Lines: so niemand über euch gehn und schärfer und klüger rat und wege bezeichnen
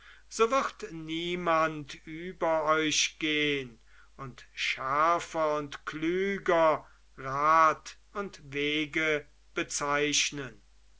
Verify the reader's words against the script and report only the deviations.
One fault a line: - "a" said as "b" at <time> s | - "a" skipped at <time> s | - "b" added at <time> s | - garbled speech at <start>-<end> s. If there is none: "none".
- "wird" added at 0.5 s